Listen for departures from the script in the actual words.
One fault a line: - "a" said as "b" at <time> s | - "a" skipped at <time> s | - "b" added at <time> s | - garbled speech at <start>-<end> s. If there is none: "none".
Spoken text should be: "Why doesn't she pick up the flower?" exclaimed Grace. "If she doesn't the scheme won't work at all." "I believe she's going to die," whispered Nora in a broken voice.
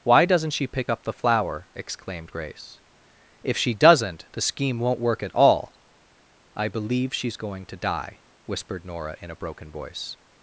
none